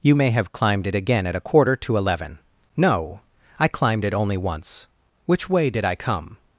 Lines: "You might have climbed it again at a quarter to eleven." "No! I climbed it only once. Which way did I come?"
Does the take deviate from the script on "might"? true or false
true